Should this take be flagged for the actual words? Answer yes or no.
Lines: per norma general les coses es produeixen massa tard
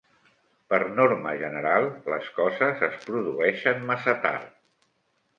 no